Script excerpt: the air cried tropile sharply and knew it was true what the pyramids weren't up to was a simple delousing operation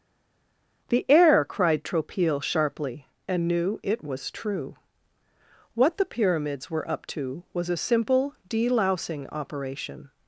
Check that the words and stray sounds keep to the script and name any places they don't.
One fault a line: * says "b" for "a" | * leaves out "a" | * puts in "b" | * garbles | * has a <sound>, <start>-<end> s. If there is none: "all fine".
* says "were" for "weren't"